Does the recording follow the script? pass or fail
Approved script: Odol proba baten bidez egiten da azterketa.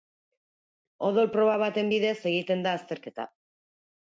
pass